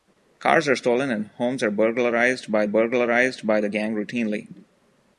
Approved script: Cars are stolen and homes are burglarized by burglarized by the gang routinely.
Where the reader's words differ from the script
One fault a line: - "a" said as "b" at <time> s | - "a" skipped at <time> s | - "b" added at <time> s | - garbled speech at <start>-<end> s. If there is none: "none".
none